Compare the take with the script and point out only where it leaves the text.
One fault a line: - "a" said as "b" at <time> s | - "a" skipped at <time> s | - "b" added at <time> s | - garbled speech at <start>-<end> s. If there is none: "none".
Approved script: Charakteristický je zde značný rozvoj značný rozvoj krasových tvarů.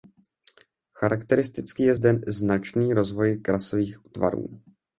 - "značný rozvoj" skipped at 3.4 s